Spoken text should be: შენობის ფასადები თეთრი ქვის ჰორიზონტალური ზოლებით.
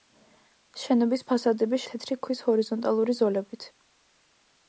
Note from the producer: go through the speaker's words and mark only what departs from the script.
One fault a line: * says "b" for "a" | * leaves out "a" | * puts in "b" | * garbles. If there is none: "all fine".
all fine